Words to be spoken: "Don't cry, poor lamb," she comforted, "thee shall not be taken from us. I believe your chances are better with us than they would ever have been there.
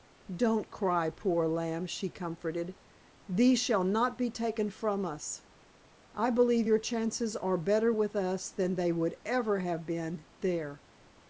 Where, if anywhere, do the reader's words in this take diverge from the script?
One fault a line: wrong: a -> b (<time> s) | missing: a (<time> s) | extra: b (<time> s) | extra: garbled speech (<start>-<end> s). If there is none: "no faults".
no faults